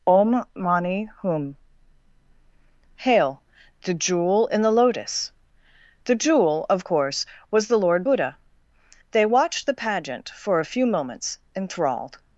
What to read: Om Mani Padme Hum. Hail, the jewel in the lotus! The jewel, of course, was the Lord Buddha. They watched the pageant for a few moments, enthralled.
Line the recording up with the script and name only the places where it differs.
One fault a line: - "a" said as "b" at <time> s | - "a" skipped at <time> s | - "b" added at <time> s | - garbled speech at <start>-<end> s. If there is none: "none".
- "Padme" skipped at 1.1 s